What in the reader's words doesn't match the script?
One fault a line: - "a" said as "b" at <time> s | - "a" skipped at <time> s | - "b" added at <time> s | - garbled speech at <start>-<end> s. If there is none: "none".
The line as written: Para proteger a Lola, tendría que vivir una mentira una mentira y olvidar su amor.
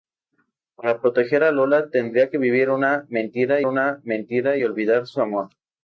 none